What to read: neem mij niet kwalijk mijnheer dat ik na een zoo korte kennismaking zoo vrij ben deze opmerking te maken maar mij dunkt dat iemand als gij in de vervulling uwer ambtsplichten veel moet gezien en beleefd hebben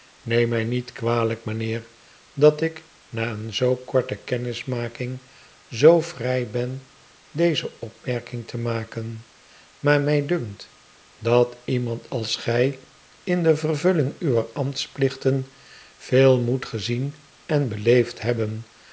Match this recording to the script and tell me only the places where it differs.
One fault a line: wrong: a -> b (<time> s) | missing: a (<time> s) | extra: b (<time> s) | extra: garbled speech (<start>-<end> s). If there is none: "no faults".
no faults